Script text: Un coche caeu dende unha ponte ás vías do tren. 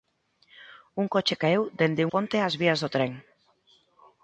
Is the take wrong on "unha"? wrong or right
wrong